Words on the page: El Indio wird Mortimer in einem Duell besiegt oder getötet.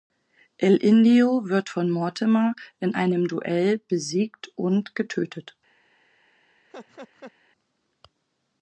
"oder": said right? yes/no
no